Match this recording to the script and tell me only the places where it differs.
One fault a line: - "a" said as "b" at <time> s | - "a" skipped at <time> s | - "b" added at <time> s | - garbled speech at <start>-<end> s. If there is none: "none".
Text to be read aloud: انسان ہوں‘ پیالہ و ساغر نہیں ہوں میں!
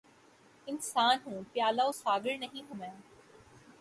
none